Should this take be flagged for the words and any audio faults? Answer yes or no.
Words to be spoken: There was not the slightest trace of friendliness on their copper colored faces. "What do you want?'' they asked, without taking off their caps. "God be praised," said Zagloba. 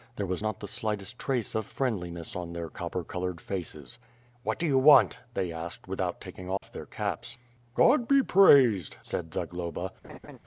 yes